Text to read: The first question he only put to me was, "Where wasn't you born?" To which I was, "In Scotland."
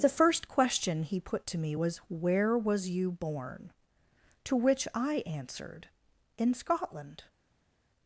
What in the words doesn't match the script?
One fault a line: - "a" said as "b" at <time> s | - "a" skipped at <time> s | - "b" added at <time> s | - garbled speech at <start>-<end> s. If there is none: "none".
- "only" skipped at 1.2 s
- "wasn't" said as "was" at 2.6 s
- "was" said as "answered" at 5.3 s